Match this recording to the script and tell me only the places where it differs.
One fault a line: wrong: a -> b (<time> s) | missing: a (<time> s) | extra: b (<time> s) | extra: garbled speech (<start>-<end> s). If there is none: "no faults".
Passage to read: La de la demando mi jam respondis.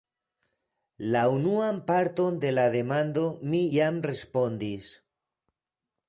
extra: unuan parton (1.3 s)